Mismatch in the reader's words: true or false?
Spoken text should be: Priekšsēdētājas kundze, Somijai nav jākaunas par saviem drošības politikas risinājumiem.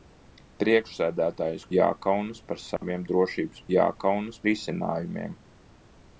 true